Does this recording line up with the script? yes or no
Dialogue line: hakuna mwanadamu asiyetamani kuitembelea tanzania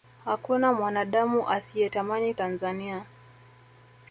no